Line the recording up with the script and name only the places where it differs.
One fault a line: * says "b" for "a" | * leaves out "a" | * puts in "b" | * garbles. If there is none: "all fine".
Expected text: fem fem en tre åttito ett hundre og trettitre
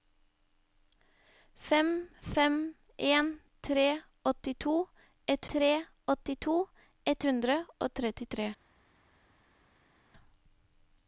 * puts in "tre åttito ett"